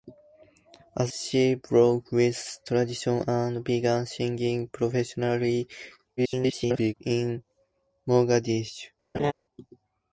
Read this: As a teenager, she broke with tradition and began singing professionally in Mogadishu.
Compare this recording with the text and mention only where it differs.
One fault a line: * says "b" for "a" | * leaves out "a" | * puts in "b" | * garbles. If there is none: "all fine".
* leaves out "a teenager"
* garbles